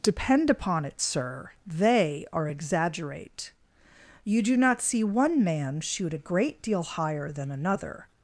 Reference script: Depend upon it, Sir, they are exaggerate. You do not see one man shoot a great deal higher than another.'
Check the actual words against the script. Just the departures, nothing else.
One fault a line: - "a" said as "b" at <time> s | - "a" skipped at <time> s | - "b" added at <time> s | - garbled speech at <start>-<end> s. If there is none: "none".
none